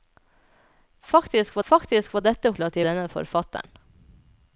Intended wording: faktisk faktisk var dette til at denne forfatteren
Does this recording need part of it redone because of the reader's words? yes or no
no